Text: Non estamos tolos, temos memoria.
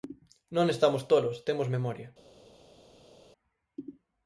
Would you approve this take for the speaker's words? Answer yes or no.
yes